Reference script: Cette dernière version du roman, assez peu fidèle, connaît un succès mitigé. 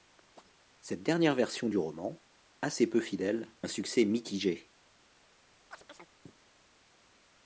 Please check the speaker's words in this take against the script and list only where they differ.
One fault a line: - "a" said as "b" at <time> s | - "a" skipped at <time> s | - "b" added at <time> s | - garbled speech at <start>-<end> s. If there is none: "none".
- "connaît" skipped at 3.5 s